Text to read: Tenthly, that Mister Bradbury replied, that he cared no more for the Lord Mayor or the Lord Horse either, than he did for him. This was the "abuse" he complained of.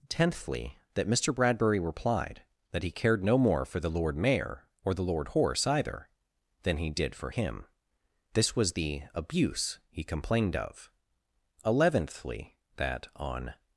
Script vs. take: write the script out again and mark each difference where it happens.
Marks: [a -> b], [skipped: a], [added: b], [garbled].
Tenthly, that Mister Bradbury replied, that he cared no more for the Lord Mayor or the Lord Horse either, than he did for him. This was the "abuse" he complained of. [added: Eleventhly that on]